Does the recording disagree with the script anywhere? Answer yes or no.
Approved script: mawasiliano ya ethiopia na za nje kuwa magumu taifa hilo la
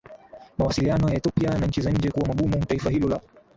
yes